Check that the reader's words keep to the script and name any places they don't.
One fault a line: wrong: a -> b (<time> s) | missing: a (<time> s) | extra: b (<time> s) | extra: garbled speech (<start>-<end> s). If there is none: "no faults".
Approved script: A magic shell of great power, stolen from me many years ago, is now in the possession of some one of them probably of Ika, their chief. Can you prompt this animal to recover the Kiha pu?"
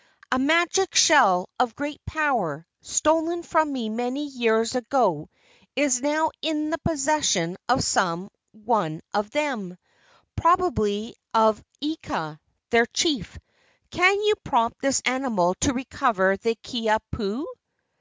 no faults